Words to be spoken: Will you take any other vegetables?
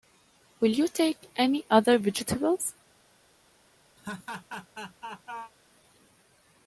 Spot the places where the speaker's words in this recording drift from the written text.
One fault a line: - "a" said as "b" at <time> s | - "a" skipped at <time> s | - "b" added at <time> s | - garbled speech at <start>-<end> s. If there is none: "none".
none